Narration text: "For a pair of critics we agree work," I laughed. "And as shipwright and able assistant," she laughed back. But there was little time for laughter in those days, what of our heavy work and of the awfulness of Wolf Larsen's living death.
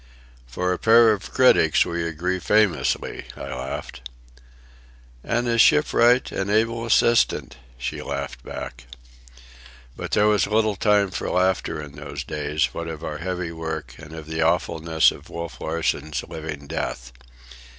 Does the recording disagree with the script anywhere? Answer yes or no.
yes